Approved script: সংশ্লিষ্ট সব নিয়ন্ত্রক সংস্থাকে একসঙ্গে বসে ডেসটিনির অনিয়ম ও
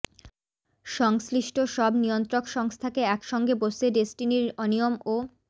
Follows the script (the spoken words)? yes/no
yes